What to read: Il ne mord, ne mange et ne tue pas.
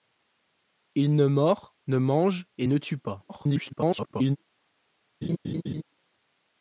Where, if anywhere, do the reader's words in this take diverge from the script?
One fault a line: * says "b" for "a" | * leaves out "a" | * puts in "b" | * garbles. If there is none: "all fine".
* garbles